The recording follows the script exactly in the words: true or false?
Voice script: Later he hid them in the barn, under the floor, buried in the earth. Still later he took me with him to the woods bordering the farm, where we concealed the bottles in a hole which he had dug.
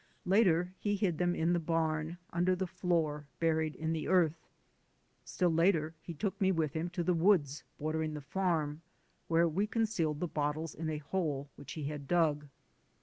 true